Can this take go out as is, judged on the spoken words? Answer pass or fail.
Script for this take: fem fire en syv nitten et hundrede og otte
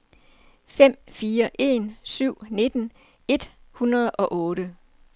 pass